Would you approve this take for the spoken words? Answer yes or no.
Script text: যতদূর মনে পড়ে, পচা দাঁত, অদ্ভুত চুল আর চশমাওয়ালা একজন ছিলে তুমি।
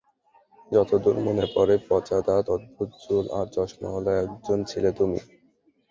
yes